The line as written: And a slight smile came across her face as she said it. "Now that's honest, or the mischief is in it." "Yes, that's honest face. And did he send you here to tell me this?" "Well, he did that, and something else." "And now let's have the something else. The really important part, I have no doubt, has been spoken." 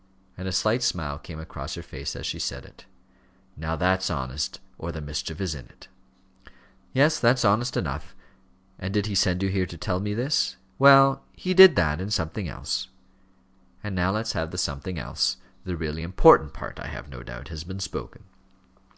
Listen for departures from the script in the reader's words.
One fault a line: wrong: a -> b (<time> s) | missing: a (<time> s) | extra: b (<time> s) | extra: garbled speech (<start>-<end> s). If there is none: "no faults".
wrong: face -> enough (7.8 s)